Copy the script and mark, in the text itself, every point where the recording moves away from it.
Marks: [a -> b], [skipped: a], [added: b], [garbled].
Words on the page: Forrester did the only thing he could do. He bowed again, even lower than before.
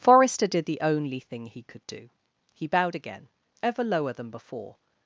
Forrester did the only thing he could do. He bowed again, [even -> ever] lower than before.